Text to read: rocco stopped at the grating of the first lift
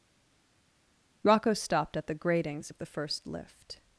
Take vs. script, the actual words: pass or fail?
fail